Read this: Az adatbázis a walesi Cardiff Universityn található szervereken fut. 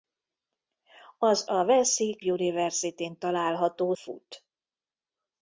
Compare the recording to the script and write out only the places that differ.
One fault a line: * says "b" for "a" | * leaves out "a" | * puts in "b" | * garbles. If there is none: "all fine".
* leaves out "adatbázis"
* leaves out "Cardiff"
* leaves out "szervereken"